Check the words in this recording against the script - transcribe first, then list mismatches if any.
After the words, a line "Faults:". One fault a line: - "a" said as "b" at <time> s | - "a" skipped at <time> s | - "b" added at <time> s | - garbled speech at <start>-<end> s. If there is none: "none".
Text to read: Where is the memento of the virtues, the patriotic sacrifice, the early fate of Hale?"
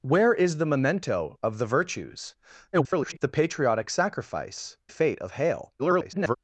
Where is the memento of the virtues, [garbled] the patriotic sacrifice, fate of Hale?" [garbled]
Faults:
- garbled speech at 2.7-3.2 s
- "the early" skipped at 4.8 s
- garbled speech at 5.8-6.4 s